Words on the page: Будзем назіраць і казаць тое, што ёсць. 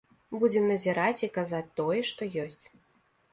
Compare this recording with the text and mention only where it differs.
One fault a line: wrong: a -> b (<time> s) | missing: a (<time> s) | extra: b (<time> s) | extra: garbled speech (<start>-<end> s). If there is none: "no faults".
no faults